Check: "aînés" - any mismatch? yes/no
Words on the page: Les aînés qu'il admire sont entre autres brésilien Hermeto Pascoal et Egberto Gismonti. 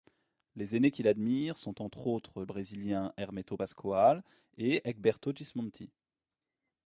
no